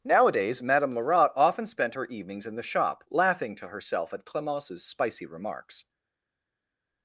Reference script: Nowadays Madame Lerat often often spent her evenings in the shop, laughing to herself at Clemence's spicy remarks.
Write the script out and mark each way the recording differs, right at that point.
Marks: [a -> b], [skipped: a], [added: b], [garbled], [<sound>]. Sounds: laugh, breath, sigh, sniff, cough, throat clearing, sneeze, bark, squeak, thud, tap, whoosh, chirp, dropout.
Nowadays Madame Lerat often [skipped: often] spent her evenings in the shop, laughing to herself at Clemence's spicy remarks.